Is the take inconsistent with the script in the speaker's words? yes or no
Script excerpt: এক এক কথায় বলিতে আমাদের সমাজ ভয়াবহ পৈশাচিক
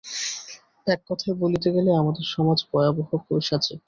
yes